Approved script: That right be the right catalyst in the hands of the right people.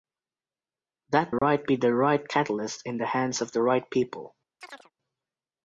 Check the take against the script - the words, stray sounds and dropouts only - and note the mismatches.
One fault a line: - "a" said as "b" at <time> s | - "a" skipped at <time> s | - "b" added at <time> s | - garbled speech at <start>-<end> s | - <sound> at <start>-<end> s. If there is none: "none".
- dropout at 1.4-1.4 s
- chirp at 4.6-4.9 s